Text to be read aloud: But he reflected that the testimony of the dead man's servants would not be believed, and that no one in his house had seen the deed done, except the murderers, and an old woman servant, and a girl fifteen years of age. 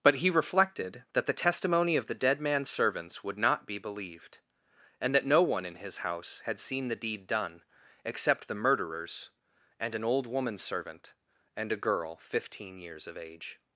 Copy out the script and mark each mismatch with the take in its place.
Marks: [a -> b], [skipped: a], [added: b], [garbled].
But he reflected that the testimony of the dead man's servants would not be believed, and that no one in his house had seen the deed done, except the murderers, and an old woman servant, and a girl fifteen years of age.